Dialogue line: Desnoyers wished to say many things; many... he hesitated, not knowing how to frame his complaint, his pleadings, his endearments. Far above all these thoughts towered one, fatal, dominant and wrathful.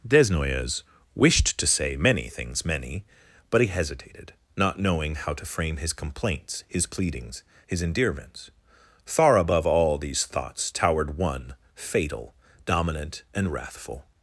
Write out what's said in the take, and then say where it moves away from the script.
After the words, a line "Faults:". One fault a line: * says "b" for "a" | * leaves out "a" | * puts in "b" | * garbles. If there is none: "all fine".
Desnoyers wished to say many things; many... but he hesitated, not knowing how to frame his complaints, his pleadings, his endearments. Far above all these thoughts towered one, fatal, dominant and wrathful.
Faults:
* puts in "but"
* says "complaints" for "complaint"